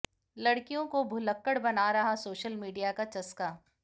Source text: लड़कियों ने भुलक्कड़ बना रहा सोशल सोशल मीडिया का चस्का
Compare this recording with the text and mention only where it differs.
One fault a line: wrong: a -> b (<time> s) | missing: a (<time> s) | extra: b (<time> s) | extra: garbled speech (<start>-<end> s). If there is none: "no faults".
wrong: ने -> को (0.9 s)
missing: सोशल (2.5 s)